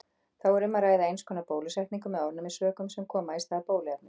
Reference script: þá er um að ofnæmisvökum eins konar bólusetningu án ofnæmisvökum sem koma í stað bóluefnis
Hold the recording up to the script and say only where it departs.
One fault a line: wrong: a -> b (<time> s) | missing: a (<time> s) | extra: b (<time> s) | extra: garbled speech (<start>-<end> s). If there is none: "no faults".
wrong: ofnæmisvökum -> ræða (0.8 s)
wrong: án -> með (2.1 s)